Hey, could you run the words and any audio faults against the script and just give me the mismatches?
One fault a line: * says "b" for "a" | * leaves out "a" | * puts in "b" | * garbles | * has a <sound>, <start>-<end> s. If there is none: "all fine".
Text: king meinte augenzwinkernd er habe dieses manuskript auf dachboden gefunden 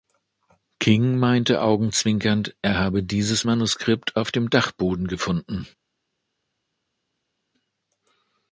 * puts in "dem"